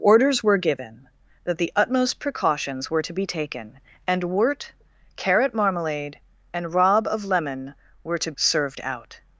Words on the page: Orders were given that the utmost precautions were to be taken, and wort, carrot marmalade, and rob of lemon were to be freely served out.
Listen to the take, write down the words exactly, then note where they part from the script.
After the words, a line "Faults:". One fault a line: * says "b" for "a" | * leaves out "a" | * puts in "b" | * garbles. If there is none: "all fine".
Orders were given that the utmost precautions were to be taken, and wort, carrot marmalade, and rob of lemon were to served out.
Faults:
* leaves out "be freely"